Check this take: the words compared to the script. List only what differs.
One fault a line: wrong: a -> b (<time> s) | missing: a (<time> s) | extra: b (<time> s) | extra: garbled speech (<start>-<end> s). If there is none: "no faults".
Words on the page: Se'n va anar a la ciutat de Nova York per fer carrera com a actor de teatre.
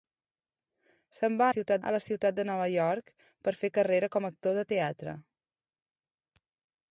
wrong: anar -> ciutat (1.5 s)